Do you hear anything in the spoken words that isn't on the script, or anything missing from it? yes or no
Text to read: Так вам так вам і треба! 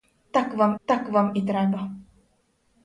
no